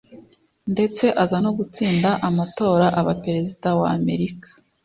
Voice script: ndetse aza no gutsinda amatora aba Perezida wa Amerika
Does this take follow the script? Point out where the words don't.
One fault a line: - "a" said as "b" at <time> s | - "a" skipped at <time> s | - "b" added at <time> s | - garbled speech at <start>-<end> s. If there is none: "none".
none